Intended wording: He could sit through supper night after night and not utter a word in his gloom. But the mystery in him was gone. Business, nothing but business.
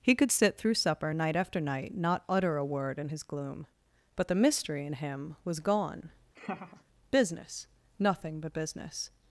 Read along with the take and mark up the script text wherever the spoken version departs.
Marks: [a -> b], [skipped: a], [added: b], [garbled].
He could sit through supper night after night [skipped: and] not utter a word in his gloom. But the mystery in him was gone. Business, nothing but business.